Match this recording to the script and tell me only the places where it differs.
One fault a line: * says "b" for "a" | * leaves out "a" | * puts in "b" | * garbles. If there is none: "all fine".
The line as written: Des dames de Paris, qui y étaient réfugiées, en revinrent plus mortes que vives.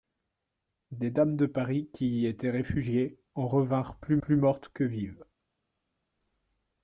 * puts in "plus"